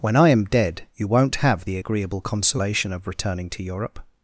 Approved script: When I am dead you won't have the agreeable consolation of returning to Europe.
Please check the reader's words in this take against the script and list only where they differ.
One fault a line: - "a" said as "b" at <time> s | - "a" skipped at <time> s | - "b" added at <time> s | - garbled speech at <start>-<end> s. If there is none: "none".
none